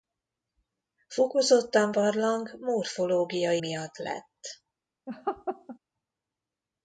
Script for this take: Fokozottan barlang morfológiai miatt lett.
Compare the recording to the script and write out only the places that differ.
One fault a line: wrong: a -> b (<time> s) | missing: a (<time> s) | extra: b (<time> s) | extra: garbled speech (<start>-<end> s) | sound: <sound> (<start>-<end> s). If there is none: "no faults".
sound: laugh (5.1-5.8 s)